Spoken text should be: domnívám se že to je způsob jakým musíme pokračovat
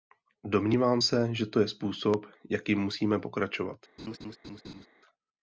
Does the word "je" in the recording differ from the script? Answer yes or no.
no